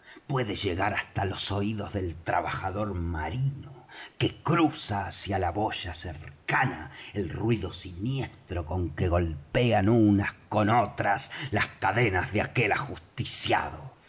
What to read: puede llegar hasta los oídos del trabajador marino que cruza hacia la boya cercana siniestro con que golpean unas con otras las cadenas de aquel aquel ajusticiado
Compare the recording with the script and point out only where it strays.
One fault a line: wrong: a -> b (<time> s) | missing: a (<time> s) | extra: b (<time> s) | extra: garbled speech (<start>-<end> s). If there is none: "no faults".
extra: el ruido (7.1 s)
missing: aquel (12.7 s)